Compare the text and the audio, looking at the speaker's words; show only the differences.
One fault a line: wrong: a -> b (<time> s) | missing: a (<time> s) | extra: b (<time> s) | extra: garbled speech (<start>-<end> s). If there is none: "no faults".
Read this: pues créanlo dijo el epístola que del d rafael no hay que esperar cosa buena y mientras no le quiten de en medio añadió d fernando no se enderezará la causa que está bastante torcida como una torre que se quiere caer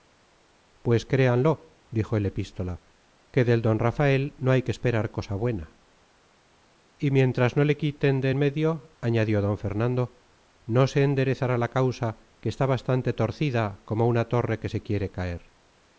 no faults